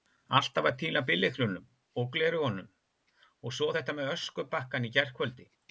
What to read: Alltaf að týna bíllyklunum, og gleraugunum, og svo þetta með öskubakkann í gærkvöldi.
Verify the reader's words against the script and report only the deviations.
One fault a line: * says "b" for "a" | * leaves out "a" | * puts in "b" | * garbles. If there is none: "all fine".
all fine